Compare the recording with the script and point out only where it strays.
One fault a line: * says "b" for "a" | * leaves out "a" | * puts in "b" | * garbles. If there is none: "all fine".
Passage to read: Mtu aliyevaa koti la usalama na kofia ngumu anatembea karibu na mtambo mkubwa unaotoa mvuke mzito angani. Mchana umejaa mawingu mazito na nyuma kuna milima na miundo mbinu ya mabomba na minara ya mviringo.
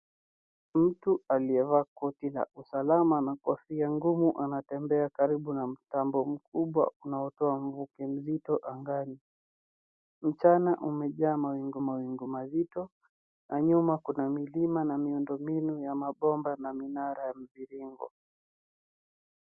* puts in "mawingu"